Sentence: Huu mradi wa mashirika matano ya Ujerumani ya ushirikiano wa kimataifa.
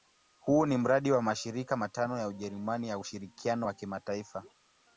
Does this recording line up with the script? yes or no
no